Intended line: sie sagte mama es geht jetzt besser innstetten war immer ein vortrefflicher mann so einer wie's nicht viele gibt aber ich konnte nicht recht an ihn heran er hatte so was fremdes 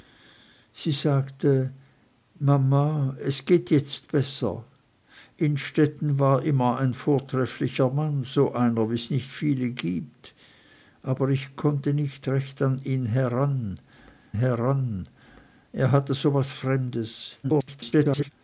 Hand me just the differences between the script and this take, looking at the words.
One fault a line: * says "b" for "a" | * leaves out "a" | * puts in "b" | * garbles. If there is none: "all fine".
* puts in "heran"
* garbles